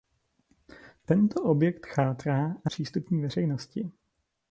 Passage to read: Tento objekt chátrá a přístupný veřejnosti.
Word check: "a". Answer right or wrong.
right